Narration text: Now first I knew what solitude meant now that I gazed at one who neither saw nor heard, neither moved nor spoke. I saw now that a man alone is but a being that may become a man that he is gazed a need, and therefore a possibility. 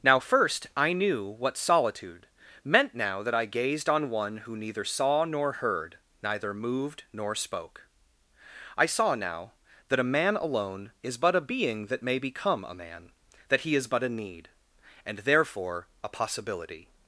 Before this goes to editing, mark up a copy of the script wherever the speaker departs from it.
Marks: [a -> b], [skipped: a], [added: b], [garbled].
Now first I knew what solitude meant now that I gazed [at -> on] one who neither saw nor heard, neither moved nor spoke. I saw now that a man alone is but a being that may become a man that he is [gazed -> but] a need, and therefore a possibility.